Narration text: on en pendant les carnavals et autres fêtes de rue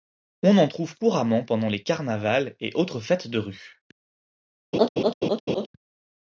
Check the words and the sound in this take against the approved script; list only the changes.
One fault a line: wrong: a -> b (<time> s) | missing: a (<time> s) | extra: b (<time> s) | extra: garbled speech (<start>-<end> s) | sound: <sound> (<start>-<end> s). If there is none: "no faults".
extra: trouve couramment (0.7 s)
sound: laugh (4.7-5.7 s)